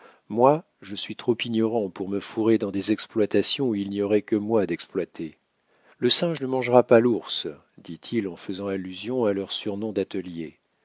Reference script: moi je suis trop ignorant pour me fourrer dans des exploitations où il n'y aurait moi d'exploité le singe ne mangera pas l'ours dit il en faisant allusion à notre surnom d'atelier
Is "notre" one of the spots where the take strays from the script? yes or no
yes